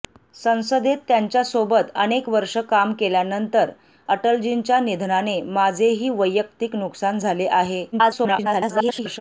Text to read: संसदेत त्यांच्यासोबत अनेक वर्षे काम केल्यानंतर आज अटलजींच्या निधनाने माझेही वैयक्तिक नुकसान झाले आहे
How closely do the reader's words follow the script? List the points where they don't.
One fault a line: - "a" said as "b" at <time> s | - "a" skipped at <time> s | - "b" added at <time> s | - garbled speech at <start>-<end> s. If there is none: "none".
- "आज" skipped at 3.7 s
- garbled speech at 7.9-9.2 s